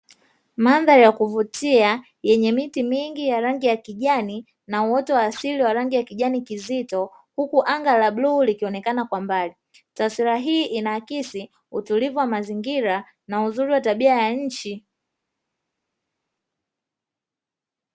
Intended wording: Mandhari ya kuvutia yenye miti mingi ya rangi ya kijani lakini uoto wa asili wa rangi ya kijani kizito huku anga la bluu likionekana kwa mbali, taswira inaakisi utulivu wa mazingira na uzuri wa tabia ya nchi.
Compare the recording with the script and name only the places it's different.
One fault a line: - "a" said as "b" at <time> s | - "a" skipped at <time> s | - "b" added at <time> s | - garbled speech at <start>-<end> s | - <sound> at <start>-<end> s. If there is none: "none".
- "lakini" said as "na" at 4.7 s
- "hii" added at 10.4 s